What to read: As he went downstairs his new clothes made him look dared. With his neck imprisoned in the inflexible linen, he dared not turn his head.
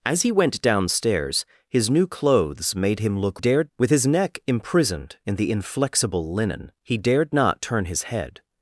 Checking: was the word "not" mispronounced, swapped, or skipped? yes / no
no